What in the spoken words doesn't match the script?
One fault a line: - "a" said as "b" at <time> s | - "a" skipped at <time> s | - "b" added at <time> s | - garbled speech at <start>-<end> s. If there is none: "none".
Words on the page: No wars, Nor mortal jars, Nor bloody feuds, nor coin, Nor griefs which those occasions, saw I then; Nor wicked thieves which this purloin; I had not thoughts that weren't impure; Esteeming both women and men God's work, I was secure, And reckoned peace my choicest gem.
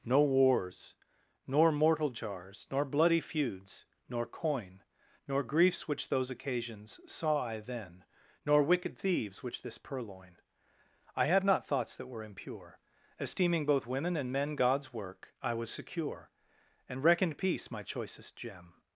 - "weren't" said as "were" at 12.1 s